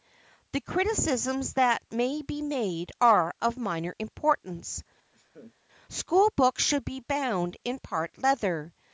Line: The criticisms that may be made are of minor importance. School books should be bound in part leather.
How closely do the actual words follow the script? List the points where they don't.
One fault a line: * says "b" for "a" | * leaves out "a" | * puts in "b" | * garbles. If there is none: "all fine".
all fine